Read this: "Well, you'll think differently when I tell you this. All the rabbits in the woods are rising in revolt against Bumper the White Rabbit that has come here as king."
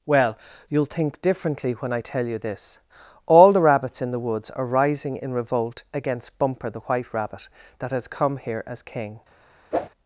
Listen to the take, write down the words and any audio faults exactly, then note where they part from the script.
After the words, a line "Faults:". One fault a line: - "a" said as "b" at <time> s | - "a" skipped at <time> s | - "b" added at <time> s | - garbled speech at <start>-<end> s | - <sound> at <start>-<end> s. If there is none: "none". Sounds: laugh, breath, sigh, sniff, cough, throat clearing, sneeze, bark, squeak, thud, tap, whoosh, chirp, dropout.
"Well, you'll think differently when I tell you this. All the rabbits in the woods are rising in revolt against Bumper the White Rabbit that has come here as king."
Faults:
- whoosh at 9.7-9.9 s